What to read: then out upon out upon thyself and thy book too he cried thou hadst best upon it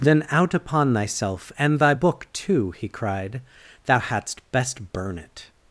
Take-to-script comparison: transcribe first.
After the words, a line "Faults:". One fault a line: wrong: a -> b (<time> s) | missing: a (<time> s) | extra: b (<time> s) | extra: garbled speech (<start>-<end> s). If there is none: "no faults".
then out upon thyself and thy book too he cried thou hadst best burn it
Faults:
missing: out upon (0.9 s)
wrong: upon -> burn (4.9 s)